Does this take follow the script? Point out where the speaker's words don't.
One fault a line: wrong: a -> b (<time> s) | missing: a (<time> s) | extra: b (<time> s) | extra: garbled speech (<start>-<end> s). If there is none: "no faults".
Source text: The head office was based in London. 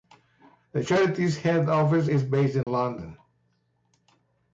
extra: charity's (0.8 s)
wrong: was -> is (2.0 s)